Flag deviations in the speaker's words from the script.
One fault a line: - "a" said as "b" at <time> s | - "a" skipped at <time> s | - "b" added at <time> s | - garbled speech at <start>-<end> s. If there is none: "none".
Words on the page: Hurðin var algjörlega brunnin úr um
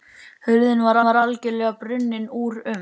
- "var" added at 1.0 s